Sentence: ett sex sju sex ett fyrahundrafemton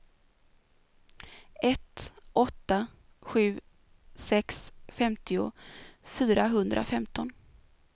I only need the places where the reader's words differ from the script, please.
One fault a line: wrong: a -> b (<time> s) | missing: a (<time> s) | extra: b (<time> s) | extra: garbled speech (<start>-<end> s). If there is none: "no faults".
wrong: sex -> åtta (2.3 s)
wrong: ett -> femtio (4.9 s)